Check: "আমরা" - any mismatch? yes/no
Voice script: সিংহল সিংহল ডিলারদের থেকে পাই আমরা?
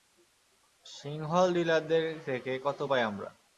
no